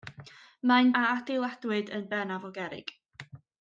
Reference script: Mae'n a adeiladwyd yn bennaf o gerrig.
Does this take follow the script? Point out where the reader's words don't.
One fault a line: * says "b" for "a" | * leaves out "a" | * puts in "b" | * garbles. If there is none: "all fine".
all fine